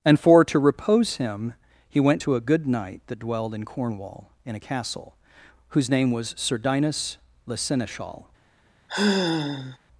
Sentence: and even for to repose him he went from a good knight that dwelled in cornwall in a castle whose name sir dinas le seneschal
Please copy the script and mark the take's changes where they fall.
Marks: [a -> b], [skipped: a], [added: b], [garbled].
and [skipped: even] for to repose him he went [from -> to] a good knight that dwelled in cornwall in a castle whose name [added: was] sir dinas le seneschal